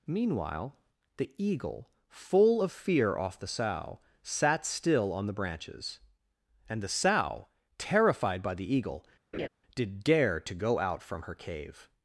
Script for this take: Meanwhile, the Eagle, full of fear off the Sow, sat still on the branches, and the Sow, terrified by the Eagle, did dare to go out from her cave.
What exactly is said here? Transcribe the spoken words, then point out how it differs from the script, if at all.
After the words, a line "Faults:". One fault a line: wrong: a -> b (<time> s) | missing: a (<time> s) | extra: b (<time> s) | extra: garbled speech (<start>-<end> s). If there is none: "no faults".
Meanwhile, the Eagle, full of fear off the Sow, sat still on the branches, and the Sow, terrified by the Eagle, did dare to go out from her cave.
Faults:
no faults